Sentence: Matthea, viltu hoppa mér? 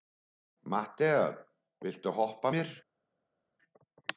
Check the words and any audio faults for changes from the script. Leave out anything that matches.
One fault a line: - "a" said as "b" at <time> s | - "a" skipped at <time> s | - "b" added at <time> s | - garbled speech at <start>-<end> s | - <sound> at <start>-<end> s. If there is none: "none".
none